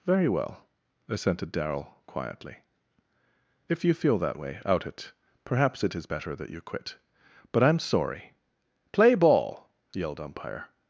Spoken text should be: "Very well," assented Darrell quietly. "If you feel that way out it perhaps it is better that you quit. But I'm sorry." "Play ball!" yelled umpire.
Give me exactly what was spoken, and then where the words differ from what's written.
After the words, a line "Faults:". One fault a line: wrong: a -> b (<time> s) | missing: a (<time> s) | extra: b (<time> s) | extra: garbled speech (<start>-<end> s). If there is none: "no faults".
"Very well," assented Darrell quietly. "If you feel that way out it perhaps it is better that you quit. But I'm sorry." "Play ball!" yelled umpire.
Faults:
no faults